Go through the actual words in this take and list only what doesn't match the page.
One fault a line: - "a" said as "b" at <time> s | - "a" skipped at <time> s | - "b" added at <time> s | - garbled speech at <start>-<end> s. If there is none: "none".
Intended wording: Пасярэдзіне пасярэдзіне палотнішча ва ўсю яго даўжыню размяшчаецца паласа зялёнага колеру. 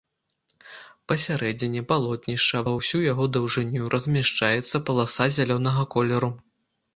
- "пасярэдзіне" skipped at 1.8 s